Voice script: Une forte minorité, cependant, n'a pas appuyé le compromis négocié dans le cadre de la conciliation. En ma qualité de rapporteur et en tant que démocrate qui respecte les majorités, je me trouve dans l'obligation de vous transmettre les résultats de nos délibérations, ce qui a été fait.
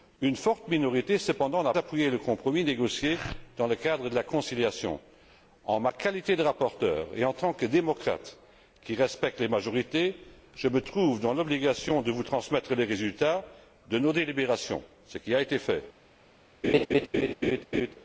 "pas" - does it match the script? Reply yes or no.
no